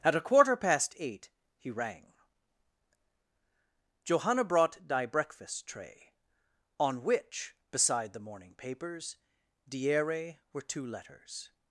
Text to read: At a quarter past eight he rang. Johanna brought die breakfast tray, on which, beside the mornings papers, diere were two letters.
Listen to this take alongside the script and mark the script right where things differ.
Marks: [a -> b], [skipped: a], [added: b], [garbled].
At a quarter past eight he rang. Johanna brought die breakfast tray, on which, beside the [mornings -> morning] papers, diere were two letters.